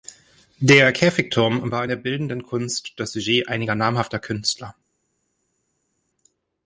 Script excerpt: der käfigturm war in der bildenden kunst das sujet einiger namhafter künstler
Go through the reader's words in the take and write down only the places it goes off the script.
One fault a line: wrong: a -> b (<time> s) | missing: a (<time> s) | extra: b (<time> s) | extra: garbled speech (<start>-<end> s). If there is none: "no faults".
no faults